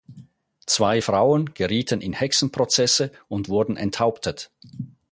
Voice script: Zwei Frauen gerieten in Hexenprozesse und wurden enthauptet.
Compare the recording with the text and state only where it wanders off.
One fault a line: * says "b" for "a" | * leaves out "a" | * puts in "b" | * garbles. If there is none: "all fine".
all fine